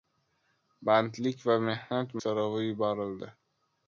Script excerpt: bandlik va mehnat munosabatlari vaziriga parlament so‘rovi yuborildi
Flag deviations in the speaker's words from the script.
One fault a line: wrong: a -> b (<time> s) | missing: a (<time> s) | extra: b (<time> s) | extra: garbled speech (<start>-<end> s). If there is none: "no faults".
missing: munosabatlari vaziriga parlament (2.1 s)